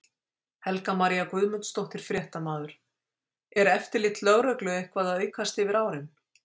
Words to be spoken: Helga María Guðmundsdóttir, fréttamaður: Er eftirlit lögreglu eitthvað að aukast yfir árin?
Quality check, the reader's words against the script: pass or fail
pass